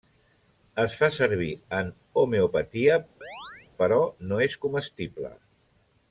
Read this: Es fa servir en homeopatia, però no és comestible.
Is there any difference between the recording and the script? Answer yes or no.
no